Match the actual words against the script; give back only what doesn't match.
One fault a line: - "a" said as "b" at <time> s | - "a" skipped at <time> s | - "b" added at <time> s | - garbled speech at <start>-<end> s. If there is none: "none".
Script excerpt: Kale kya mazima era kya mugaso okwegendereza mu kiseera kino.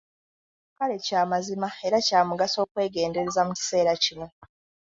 none